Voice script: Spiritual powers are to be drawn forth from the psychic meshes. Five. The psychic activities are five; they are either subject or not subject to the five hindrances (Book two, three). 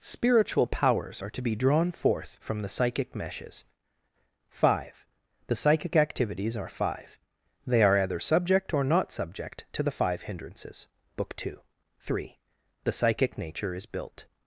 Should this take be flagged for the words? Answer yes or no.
yes